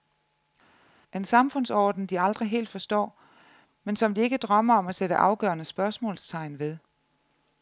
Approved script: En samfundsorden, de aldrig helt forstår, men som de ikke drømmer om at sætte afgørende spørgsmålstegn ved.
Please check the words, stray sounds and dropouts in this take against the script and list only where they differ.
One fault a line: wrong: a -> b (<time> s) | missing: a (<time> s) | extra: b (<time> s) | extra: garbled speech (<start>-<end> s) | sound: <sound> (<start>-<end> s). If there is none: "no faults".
no faults